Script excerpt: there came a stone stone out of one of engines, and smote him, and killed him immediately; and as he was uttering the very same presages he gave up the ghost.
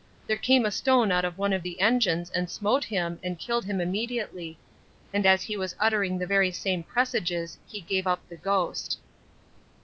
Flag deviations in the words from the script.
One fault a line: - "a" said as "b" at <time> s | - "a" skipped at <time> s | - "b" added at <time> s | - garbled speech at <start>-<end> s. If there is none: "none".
- "stone" skipped at 1.1 s
- "the" added at 1.6 s